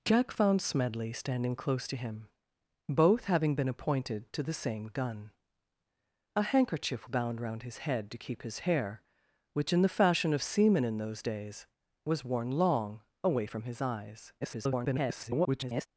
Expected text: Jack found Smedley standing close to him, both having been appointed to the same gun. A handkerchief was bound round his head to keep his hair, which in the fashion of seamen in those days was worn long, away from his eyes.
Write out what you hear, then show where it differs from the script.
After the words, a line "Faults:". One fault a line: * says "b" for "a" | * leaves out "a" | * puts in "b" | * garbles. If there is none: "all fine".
Jack found Smedley standing close to him, both having been appointed to the same gun. A handkerchief bound round his head to keep his hair, which in the fashion of seamen in those days was worn long, away from his eyes. [garbled]
Faults:
* leaves out "was"
* garbles